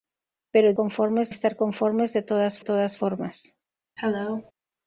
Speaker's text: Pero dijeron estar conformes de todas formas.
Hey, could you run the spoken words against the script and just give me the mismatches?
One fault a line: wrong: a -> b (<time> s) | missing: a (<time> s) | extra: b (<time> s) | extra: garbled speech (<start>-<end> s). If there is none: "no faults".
wrong: dijeron -> conformes (0.8 s)
extra: todas (2.6 s)